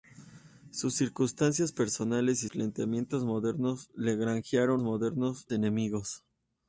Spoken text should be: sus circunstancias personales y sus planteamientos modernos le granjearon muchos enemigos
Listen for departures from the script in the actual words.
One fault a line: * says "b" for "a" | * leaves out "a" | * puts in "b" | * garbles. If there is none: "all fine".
* leaves out "sus"
* says "modernos" for "muchos"